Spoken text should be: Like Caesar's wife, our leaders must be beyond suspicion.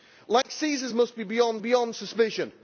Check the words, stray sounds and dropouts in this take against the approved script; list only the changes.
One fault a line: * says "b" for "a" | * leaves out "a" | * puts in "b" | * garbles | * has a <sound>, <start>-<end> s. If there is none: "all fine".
* has a dropout, 0.4-0.4 s
* leaves out "wife our leaders"
* puts in "beyond"